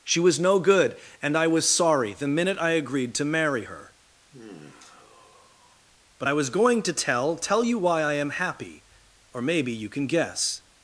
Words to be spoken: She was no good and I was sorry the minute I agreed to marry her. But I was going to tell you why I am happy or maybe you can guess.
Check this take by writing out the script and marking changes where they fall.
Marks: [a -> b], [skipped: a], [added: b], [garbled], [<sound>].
She was no good and I was sorry the minute I agreed to marry her. [sigh] But I was going to tell [added: tell] you why I am happy or maybe you can guess.